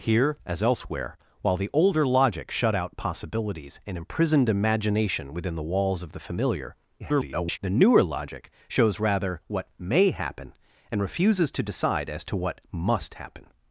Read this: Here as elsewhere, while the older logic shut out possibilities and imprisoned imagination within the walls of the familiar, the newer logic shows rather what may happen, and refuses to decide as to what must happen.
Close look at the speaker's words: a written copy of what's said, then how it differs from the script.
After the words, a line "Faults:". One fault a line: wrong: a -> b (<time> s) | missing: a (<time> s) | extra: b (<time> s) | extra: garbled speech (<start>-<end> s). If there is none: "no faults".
Here as elsewhere, while the older logic shut out possibilities and imprisoned imagination within the walls of the familiar, [garbled] the newer logic shows rather what may happen, and refuses to decide as to what must happen.
Faults:
extra: garbled speech (7.0-7.6 s)